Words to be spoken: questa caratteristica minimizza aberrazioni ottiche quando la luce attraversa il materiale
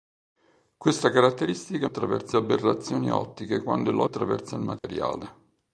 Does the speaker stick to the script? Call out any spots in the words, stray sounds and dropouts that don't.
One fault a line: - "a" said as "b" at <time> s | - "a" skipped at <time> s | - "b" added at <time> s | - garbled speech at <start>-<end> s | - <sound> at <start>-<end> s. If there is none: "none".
- "minimizza" said as "attraversa" at 1.8 s
- "luce" skipped at 4.0 s
- dropout at 4.8-4.8 s